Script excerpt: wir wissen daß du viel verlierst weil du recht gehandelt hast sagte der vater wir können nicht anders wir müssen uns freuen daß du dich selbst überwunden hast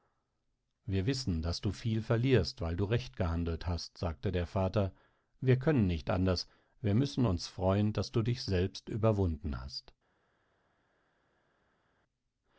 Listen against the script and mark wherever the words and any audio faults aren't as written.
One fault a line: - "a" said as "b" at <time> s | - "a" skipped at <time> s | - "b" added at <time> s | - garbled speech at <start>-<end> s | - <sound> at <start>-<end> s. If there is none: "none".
none